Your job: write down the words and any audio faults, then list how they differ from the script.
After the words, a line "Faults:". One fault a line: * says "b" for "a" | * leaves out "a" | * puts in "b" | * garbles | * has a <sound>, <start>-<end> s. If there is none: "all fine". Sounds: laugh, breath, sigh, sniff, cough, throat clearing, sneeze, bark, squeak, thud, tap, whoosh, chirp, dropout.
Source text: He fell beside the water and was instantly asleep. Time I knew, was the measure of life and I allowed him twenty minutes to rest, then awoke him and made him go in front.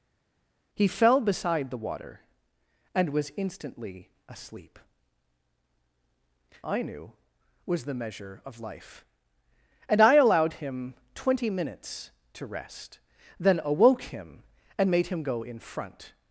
He fell beside the water and was instantly asleep. I knew, was the measure of life and I allowed him twenty minutes to rest, then awoke him and made him go in front.
Faults:
* leaves out "Time"